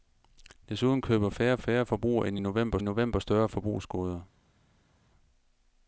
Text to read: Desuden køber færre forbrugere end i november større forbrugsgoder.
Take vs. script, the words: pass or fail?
fail